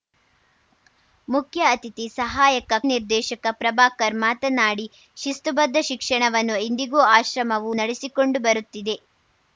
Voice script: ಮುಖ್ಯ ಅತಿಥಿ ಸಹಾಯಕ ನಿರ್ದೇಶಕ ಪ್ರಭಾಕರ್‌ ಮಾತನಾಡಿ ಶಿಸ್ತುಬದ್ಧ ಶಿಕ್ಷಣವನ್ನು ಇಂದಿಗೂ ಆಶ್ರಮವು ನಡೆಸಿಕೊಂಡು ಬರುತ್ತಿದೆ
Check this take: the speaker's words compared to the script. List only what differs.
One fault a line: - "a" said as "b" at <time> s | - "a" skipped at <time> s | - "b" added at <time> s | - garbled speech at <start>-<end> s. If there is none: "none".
none